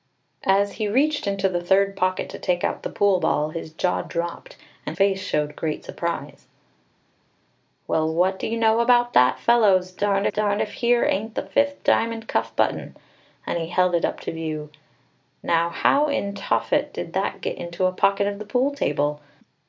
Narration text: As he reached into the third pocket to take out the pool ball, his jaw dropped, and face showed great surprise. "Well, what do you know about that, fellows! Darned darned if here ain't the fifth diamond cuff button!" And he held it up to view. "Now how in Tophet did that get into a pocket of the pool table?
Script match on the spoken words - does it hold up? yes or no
yes